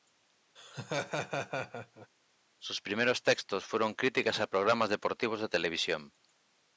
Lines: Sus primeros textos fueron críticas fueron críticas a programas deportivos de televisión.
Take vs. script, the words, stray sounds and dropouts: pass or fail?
fail